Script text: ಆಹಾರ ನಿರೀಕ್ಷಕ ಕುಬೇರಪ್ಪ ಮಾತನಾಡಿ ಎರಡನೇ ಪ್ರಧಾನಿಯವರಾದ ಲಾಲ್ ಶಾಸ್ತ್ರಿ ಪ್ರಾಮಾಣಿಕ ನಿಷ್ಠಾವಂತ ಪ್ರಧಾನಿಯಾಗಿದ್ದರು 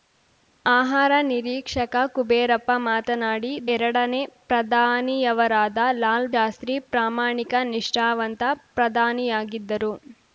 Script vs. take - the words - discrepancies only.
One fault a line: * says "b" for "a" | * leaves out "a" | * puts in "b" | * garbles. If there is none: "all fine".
all fine